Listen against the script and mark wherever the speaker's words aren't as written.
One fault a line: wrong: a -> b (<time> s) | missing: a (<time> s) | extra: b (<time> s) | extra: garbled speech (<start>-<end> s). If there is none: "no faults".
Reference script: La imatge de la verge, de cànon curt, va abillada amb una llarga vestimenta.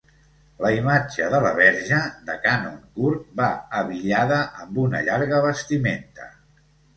no faults